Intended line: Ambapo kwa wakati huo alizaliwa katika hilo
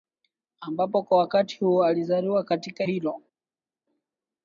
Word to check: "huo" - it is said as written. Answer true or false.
true